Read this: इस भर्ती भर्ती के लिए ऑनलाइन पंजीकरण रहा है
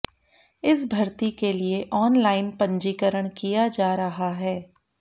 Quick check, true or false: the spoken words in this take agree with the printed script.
false